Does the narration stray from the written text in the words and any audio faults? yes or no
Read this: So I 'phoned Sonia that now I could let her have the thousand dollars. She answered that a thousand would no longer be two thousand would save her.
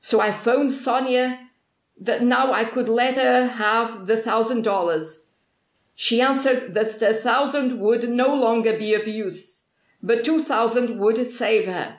yes